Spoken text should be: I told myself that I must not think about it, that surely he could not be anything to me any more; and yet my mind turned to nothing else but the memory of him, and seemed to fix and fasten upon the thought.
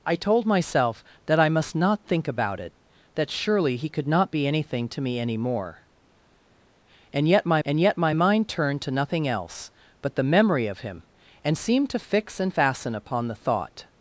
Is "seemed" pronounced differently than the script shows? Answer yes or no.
no